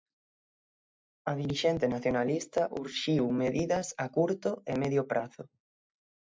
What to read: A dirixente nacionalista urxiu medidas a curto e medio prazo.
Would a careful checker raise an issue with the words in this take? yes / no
no